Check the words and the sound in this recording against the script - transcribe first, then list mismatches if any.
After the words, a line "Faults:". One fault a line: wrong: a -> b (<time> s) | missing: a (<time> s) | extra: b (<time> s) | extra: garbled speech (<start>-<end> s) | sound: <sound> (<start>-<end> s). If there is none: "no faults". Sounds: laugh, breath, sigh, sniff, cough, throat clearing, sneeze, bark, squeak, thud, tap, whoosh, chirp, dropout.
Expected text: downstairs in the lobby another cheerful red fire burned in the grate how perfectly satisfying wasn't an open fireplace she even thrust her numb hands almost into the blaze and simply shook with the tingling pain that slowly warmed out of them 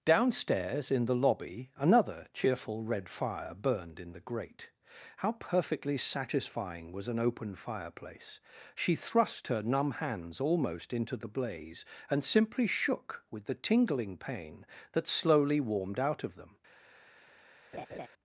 downstairs in the lobby another cheerful red fire burned in the grate how perfectly satisfying was an open fireplace she thrust her numb hands almost into the blaze and simply shook with the tingling pain that slowly warmed out of them
Faults:
wrong: wasn't -> was (6.9 s)
missing: even (8.9 s)
sound: laugh (17.7-18.1 s)